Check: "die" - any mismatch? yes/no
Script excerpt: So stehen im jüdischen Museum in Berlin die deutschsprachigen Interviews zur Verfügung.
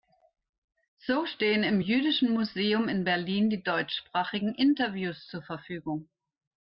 no